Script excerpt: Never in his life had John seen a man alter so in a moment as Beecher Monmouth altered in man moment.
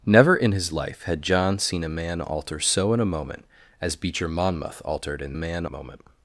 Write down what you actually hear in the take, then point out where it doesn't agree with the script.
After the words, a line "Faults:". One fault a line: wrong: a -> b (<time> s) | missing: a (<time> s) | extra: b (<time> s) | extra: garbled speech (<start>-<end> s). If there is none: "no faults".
Never in his life had John seen a man alter so in a moment as Beecher Monmouth altered in man moment.
Faults:
no faults